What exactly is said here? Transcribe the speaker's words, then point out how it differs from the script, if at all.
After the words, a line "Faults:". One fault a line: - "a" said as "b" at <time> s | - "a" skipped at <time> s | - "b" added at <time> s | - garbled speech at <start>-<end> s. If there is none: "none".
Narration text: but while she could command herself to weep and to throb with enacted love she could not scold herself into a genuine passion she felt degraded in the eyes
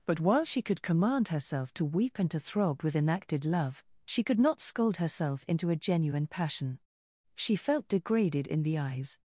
but while she could command herself to weep and to throb with enacted love she could not scold herself into a genuine passion she felt degraded in the eyes
Faults:
none